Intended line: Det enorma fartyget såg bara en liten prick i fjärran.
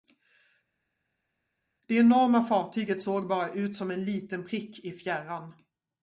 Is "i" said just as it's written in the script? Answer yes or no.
yes